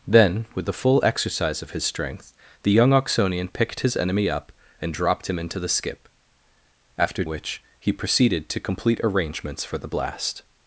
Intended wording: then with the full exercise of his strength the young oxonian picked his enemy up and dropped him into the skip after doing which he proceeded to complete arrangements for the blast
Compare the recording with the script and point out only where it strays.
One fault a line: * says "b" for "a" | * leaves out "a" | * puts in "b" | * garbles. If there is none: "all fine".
* leaves out "doing"